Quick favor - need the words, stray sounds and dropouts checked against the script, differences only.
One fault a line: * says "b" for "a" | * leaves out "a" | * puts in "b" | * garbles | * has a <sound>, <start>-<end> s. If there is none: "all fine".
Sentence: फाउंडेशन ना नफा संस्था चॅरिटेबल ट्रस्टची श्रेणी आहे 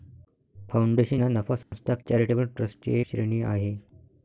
* has a dropout, 1.6-1.7 s